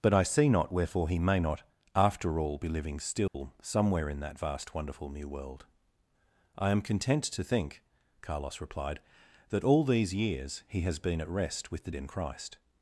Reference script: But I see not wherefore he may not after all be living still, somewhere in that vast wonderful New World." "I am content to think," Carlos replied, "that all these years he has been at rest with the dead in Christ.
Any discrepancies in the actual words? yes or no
yes